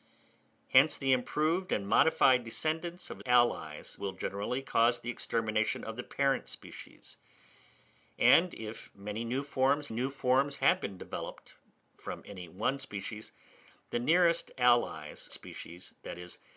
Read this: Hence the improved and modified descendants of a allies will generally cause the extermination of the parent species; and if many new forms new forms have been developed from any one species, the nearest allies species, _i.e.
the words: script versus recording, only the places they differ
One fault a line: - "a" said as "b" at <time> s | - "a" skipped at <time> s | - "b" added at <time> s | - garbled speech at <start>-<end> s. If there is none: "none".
none